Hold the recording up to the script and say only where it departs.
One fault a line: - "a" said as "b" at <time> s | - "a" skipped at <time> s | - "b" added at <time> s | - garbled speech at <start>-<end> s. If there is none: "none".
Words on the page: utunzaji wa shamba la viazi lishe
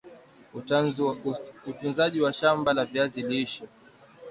none